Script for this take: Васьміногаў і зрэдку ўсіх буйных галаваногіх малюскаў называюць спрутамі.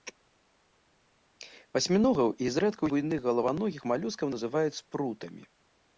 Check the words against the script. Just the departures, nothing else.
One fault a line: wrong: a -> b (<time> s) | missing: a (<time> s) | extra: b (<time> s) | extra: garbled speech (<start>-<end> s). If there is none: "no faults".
missing: ўсіх (2.8 s)